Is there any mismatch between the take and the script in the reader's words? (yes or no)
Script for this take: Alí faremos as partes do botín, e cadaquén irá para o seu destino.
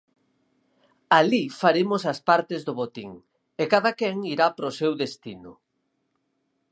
no